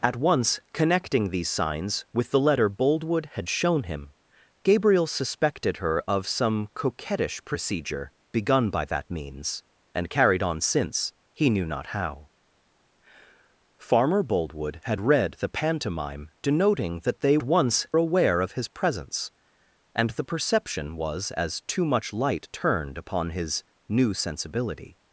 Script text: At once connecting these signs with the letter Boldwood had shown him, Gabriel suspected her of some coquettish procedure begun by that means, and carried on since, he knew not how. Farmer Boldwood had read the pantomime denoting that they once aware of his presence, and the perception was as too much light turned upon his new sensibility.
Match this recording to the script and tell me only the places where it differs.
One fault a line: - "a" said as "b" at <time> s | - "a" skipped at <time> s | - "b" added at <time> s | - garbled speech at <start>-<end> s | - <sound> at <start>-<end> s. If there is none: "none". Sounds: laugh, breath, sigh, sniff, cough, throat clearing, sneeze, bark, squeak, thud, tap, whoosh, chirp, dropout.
none